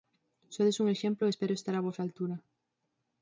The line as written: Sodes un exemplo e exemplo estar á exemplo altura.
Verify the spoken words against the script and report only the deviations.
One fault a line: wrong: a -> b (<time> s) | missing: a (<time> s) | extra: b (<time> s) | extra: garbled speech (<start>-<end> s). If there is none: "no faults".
wrong: exemplo -> espero (1.3 s)
wrong: exemplo -> vosa (1.9 s)